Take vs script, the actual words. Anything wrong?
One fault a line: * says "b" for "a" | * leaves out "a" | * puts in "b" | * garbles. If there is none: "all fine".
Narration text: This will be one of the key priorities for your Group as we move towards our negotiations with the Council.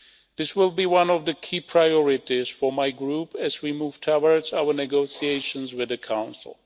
* says "my" for "your"